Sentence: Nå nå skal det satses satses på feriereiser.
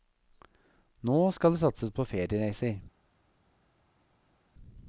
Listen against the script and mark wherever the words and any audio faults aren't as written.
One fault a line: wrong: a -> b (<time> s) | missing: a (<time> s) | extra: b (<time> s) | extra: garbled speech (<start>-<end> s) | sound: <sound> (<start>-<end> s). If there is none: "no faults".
missing: nå (1.3 s)
missing: satses (1.9 s)